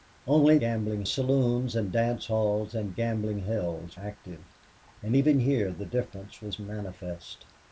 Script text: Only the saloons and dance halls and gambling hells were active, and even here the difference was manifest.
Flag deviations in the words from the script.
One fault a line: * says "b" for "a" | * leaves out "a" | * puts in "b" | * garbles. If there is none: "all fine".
* says "gambling" for "the"
* leaves out "were"